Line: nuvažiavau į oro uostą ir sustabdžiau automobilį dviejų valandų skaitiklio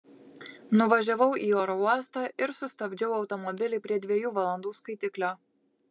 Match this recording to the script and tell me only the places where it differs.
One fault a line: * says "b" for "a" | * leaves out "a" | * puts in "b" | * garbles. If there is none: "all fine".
* puts in "prie"